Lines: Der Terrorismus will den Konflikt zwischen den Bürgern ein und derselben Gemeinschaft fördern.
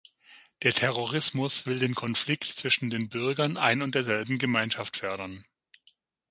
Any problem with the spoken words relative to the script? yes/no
no